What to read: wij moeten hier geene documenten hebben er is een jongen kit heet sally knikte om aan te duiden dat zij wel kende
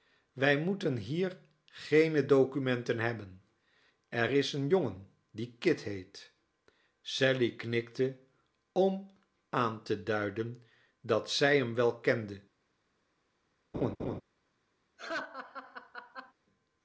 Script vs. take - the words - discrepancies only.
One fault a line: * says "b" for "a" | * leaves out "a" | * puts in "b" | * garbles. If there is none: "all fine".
* puts in "die"
* puts in "hem"